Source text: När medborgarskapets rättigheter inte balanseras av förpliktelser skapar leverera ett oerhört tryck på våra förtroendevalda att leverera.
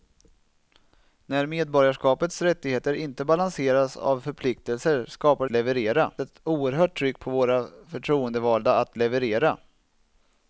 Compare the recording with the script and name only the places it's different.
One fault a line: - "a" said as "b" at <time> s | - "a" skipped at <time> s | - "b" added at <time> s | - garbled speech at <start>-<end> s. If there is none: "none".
none